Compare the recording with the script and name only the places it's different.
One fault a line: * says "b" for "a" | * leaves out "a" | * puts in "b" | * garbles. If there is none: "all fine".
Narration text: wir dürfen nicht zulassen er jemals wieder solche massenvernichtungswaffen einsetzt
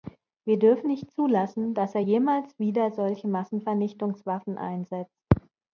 * puts in "dass"